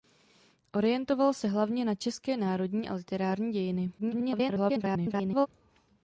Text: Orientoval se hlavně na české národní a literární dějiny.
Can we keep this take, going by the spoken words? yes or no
no